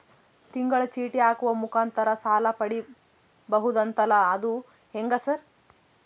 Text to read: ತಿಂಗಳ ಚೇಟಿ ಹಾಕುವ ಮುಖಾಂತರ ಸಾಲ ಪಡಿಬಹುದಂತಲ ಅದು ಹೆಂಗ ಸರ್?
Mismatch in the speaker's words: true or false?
false